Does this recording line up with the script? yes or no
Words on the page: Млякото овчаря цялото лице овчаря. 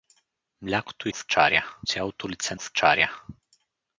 yes